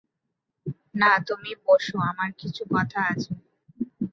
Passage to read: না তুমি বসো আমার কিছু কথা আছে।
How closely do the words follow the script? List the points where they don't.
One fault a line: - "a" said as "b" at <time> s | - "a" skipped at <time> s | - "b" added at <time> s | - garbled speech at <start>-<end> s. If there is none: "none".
none